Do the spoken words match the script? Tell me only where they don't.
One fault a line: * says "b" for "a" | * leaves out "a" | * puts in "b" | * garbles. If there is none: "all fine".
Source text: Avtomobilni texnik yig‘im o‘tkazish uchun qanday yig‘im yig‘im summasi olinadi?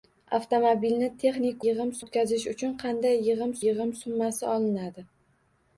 all fine